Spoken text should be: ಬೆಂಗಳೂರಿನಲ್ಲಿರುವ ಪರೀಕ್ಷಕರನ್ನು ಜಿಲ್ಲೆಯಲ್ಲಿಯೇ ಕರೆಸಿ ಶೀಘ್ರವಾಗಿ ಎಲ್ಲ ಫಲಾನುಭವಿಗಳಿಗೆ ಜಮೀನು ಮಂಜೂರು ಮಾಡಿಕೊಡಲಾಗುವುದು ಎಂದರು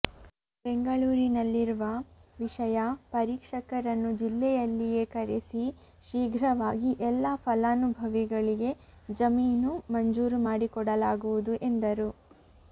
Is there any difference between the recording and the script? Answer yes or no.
yes